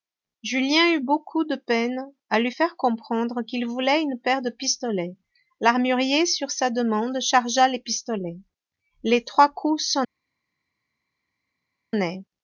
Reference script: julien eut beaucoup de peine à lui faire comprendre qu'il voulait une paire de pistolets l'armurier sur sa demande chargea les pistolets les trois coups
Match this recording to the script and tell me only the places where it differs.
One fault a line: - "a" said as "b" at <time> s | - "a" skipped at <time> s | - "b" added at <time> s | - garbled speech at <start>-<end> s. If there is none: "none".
none